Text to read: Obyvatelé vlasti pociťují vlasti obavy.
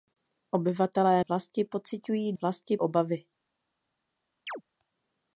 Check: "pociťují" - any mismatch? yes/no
no